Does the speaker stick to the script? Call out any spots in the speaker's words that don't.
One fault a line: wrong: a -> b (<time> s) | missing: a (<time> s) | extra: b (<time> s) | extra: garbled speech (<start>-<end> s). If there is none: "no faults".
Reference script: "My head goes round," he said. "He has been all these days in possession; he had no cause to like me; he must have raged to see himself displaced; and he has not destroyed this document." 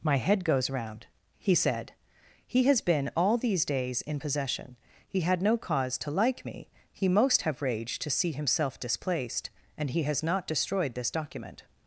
wrong: must -> most (7.1 s)